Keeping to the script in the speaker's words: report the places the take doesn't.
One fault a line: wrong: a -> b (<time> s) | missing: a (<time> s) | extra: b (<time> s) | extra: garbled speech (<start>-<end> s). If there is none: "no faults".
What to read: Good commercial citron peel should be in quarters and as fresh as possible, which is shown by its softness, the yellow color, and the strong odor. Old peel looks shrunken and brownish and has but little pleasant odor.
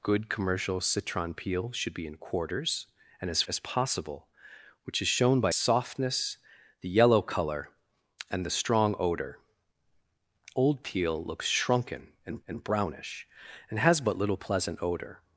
missing: fresh (3.4 s)
missing: its (5.5 s)
extra: and (12.5 s)